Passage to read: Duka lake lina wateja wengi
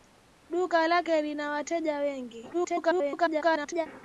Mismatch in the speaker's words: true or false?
true